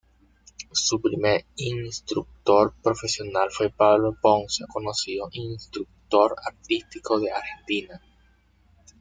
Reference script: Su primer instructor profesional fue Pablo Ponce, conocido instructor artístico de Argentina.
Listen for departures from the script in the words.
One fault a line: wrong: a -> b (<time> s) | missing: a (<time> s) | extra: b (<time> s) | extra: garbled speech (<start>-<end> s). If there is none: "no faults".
no faults